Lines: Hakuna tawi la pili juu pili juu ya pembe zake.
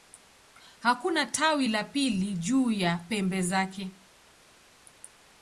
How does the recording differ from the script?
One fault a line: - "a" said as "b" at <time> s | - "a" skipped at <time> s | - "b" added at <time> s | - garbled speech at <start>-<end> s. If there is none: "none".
- "pili juu" skipped at 2.7 s